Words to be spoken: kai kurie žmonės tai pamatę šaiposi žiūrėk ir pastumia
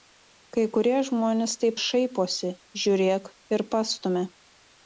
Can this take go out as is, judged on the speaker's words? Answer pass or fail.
fail